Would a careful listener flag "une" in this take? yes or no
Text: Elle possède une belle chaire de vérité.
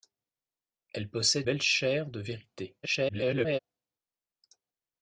yes